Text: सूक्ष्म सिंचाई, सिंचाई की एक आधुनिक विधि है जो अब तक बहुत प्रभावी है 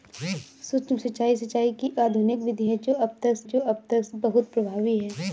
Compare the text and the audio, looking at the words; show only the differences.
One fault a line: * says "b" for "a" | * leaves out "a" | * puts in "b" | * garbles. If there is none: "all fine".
* leaves out "एक"
* puts in "जो अब तक"